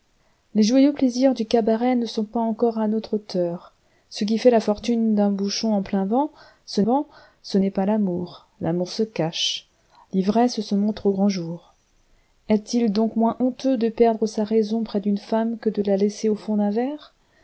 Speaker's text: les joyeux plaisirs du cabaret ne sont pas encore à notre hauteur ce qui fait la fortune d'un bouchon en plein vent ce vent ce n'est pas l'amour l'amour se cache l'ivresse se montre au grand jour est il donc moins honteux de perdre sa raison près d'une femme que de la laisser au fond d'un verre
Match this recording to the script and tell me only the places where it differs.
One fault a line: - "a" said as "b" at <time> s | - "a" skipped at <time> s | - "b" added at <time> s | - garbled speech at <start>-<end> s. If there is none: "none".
none